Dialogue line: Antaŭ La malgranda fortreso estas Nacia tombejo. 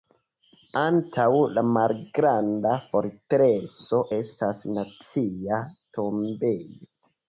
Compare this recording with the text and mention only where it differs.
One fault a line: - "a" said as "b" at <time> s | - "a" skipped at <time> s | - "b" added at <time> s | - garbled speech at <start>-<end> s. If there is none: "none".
none